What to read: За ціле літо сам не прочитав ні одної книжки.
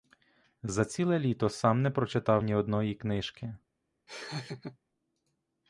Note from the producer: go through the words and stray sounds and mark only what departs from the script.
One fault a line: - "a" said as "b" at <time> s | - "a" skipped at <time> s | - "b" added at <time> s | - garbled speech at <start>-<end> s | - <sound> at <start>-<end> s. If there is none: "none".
- laugh at 4.1-4.8 s